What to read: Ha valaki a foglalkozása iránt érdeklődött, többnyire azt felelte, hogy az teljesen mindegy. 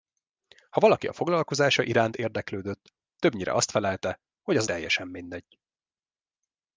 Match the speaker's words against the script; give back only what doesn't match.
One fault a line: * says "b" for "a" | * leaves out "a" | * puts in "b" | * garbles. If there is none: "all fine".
all fine